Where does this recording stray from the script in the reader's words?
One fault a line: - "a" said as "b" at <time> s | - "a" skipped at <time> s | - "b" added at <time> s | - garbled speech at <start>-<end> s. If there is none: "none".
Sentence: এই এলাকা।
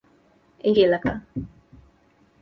none